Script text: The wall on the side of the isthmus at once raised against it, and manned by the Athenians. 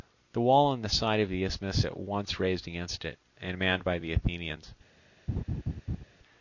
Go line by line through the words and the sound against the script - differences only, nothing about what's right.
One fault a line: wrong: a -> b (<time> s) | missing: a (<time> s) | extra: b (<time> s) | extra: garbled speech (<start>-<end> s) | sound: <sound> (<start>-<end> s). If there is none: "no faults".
sound: laugh (5.3-6.0 s)